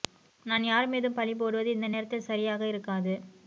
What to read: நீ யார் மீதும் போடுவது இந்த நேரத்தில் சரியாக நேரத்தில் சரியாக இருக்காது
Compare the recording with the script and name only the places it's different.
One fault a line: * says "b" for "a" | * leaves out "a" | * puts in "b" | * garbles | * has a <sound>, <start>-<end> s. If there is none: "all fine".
* says "நான்" for "நீ"
* puts in "பழி"
* leaves out "நேரத்தில் சரியாக"